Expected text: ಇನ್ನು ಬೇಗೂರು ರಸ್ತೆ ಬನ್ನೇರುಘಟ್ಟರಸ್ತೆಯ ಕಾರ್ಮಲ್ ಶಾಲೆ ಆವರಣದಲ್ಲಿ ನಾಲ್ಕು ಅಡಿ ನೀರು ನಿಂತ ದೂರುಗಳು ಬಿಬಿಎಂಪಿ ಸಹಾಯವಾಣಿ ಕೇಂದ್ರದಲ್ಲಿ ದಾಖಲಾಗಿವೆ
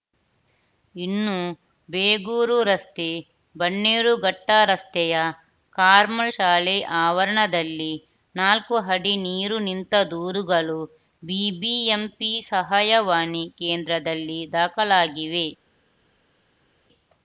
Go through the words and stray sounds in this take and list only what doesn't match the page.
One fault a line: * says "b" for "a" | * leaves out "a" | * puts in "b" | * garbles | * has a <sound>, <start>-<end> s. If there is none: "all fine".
all fine